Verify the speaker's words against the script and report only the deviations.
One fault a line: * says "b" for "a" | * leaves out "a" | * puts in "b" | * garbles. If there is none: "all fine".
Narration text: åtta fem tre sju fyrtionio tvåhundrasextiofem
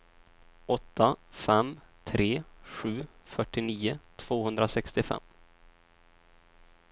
all fine